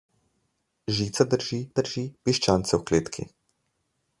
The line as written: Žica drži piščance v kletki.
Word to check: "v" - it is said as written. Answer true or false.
true